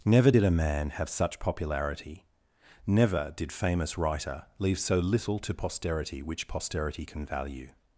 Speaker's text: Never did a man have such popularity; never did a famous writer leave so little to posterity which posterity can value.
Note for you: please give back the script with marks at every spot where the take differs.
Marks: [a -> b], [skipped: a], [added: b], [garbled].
Never did a man have such popularity; never did [skipped: a] famous writer leave so little to posterity which posterity can value.